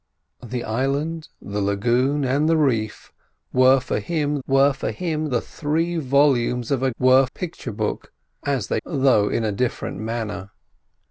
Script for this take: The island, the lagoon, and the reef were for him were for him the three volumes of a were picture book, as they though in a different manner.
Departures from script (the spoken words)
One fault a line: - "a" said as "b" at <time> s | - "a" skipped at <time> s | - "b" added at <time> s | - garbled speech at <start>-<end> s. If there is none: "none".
none